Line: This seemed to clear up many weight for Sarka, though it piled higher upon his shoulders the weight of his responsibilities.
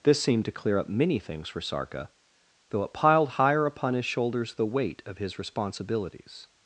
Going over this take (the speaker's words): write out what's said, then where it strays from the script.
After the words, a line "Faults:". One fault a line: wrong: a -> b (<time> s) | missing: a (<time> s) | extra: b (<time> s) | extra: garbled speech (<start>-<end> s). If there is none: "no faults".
This seemed to clear up many things for Sarka, though it piled higher upon his shoulders the weight of his responsibilities.
Faults:
wrong: weight -> things (1.2 s)